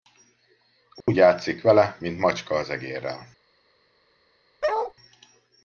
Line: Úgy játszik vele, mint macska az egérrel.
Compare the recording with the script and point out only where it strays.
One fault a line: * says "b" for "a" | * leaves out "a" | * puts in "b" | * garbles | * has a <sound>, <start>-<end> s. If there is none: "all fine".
* has a dropout, 1.0-1.1 s
* has a bark, 4.6-4.9 s